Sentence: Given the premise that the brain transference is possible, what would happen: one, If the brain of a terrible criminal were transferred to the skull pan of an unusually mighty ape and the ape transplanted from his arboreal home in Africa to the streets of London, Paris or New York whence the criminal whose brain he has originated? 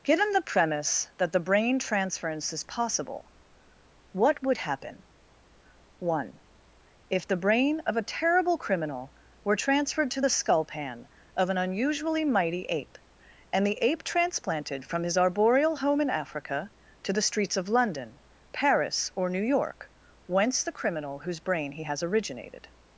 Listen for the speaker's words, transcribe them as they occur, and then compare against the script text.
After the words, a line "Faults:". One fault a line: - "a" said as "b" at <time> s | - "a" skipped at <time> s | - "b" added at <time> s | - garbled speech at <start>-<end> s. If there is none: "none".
Given the premise that the brain transference is possible, what would happen: one, If the brain of a terrible criminal were transferred to the skull pan of an unusually mighty ape and the ape transplanted from his arboreal home in Africa to the streets of London, Paris or New York whence the criminal whose brain he has originated?
Faults:
none